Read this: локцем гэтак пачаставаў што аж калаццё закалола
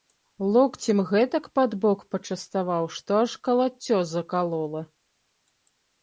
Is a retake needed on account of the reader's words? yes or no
yes